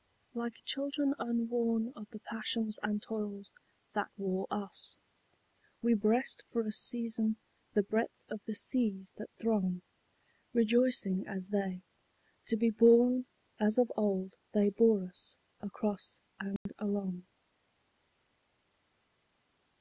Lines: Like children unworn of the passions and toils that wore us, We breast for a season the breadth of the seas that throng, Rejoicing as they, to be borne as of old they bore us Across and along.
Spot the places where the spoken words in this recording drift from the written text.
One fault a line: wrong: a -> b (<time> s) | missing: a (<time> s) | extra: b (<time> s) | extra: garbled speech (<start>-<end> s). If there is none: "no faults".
no faults